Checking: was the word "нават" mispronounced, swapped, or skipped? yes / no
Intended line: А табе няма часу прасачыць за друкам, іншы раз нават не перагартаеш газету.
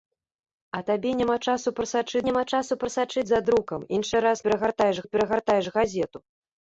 yes